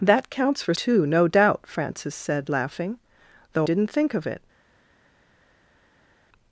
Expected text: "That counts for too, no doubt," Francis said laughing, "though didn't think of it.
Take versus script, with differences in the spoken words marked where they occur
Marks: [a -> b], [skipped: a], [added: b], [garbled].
"That counts for too, no doubt," Francis said laughing, "though didn't think of it.